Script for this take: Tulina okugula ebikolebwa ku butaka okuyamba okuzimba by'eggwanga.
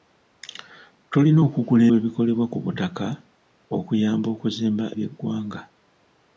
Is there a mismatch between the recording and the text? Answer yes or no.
no